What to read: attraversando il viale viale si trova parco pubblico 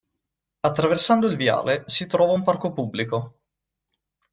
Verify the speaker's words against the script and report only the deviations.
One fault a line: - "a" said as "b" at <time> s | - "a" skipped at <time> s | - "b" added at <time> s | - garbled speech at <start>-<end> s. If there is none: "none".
- "viale" skipped at 1.8 s
- "un" added at 2.3 s